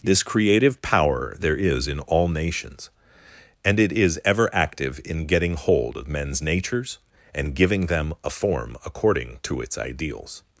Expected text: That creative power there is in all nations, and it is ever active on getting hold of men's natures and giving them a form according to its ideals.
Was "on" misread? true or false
true